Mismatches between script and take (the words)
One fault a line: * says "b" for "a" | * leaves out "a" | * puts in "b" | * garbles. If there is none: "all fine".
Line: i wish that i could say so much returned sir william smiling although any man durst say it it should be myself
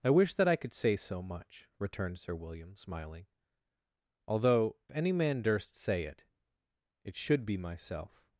all fine